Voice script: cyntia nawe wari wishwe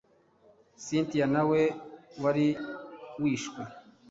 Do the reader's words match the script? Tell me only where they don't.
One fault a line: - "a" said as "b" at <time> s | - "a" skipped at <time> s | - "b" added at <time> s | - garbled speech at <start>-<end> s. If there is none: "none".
none